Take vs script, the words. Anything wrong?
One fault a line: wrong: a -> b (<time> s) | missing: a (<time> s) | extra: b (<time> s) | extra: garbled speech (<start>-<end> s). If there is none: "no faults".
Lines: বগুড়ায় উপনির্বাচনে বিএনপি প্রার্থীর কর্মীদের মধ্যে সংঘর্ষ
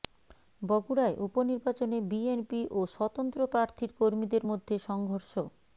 extra: ও স্বতন্ত্র (2.7 s)